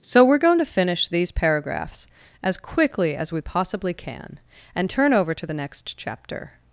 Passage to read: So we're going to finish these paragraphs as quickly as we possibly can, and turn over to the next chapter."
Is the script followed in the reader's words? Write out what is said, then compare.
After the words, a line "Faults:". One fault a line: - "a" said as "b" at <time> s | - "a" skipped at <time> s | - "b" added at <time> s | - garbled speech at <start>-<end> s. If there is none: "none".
So we're going to finish these paragraphs as quickly as we possibly can, and turn over to the next chapter."
Faults:
none